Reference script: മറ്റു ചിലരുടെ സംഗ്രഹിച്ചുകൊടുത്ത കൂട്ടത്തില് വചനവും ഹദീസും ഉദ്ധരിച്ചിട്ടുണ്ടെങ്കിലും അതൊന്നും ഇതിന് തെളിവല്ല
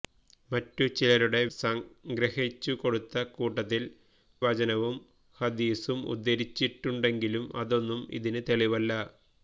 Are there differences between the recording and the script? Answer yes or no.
no